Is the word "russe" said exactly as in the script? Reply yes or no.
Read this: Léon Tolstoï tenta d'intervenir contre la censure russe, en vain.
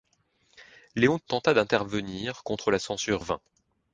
no